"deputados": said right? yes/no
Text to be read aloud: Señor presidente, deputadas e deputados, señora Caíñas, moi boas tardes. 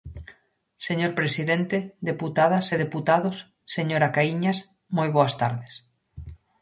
yes